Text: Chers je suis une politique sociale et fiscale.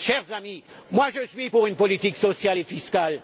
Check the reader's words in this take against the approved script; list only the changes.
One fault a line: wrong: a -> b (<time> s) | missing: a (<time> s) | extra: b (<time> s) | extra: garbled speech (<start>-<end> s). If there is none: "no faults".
extra: amis (0.3 s)
extra: pour (1.5 s)